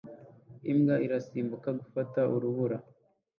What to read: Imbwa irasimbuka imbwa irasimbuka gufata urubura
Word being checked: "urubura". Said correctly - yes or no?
yes